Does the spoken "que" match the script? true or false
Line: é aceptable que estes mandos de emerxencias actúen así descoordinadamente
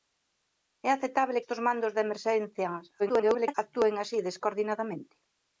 false